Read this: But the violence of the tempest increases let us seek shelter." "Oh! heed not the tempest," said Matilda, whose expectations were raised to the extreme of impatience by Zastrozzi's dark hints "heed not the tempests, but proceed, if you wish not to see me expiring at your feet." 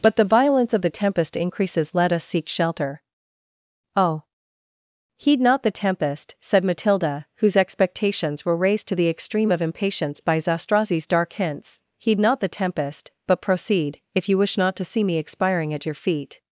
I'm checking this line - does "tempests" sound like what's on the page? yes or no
no